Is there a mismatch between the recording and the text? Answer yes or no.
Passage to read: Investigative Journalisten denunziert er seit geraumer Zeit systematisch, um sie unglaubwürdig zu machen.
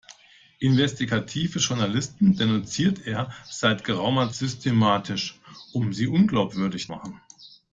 yes